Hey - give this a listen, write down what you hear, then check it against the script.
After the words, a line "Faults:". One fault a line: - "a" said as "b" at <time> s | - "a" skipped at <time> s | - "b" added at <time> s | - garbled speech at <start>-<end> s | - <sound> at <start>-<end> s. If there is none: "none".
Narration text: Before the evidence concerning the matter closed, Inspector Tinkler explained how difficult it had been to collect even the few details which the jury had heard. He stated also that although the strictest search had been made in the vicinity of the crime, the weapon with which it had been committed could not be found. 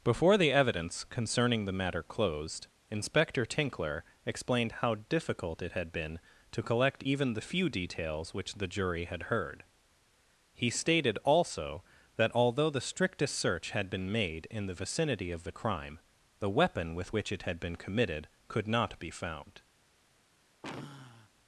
Before the evidence concerning the matter closed, Inspector Tinkler explained how difficult it had been to collect even the few details which the jury had heard. He stated also that although the strictest search had been made in the vicinity of the crime, the weapon with which it had been committed could not be found.
Faults:
- sigh at 20.6-21.3 s